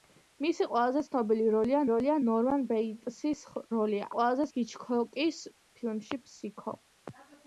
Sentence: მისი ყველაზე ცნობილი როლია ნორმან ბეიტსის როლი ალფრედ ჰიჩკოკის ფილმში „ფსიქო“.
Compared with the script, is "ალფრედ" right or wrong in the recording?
wrong